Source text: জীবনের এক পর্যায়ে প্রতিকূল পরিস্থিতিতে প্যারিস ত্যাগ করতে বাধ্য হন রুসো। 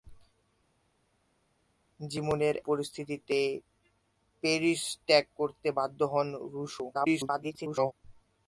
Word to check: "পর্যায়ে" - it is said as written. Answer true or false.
false